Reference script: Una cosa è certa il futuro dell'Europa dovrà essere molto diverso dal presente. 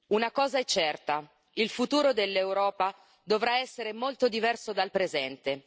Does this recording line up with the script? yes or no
yes